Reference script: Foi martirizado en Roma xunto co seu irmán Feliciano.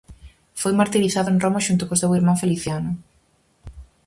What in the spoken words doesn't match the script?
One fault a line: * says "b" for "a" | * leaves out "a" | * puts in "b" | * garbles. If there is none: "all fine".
all fine